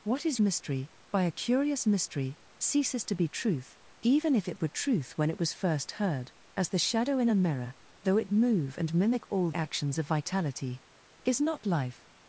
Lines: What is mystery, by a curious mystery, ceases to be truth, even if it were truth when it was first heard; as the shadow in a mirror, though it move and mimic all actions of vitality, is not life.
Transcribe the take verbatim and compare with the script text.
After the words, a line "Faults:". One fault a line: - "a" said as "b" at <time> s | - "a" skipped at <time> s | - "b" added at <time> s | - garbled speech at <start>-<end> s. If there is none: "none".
What is mystery, by a curious mystery, ceases to be truth, even if it were truth when it was first heard; as the shadow in a mirror, though it move and mimic all actions of vitality, is not life.
Faults:
none